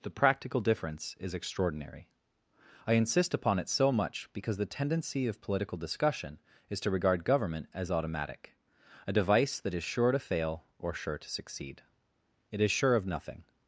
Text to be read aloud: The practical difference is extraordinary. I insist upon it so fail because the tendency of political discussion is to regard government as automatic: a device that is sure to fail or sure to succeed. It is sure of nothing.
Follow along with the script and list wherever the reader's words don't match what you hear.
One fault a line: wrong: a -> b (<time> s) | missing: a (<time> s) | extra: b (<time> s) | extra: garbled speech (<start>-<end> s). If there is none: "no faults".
wrong: fail -> much (3.9 s)